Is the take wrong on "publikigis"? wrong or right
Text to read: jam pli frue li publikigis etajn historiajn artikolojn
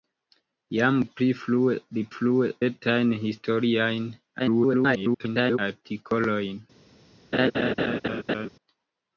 wrong